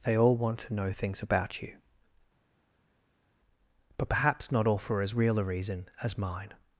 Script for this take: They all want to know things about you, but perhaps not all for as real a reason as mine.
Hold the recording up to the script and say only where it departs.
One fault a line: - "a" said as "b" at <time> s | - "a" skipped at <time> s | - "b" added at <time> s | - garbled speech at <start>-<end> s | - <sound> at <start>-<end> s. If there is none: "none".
none